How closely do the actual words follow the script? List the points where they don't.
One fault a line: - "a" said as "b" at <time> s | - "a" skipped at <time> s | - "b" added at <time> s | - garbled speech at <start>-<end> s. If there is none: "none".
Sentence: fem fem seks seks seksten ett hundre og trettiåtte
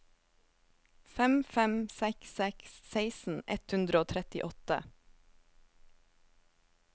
none